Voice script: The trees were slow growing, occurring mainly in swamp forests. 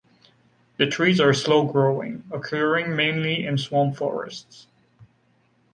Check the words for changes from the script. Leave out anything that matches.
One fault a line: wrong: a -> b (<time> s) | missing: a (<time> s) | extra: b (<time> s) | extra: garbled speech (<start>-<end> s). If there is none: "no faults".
wrong: were -> are (1.2 s)